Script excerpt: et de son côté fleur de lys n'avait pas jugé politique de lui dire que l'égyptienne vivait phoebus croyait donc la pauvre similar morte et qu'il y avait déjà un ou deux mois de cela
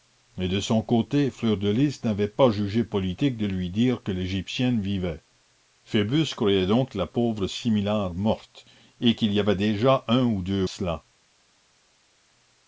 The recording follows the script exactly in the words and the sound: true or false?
false